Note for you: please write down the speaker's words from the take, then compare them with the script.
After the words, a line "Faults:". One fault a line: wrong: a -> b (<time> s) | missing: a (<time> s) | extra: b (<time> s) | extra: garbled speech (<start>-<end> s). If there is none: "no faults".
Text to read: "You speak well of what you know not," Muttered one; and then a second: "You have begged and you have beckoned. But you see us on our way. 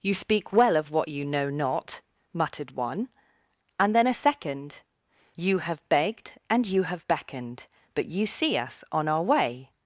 "You speak well of what you know not," Muttered one; and then a second: "You have begged and you have beckoned. But you see us on our way.
Faults:
no faults